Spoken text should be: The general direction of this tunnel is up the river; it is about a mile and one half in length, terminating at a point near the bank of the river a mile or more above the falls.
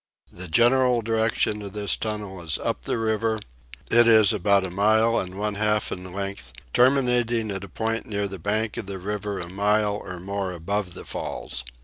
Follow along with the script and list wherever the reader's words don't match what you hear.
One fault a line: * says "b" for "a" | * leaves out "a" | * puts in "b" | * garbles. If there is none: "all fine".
all fine